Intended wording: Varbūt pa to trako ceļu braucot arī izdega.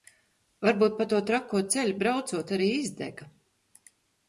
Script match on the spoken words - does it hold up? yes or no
yes